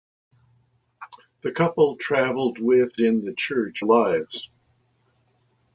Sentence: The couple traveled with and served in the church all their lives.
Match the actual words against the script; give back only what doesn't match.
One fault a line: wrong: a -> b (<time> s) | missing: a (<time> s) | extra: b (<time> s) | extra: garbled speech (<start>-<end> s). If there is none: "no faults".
missing: and served (3.0 s)
missing: all their (3.8 s)